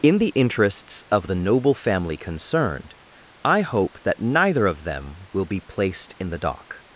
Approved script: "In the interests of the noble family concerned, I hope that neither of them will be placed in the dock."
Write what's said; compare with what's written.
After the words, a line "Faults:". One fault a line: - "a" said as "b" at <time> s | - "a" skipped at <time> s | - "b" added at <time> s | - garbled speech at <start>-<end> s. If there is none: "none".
"In the interests of the noble family concerned, I hope that neither of them will be placed in the dock."
Faults:
none